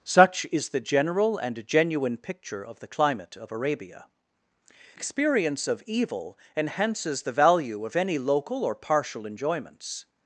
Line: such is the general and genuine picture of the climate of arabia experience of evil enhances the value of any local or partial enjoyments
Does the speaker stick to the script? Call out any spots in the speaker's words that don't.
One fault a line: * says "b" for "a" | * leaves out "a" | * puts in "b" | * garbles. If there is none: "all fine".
all fine